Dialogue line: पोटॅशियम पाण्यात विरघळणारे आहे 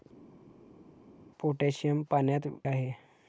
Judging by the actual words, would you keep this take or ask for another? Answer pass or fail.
fail